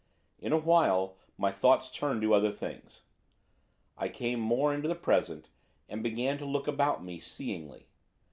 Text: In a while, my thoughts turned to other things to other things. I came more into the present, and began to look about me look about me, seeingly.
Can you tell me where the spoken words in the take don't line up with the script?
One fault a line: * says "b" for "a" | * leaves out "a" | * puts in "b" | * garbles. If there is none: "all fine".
* leaves out "to other things"
* leaves out "look about me"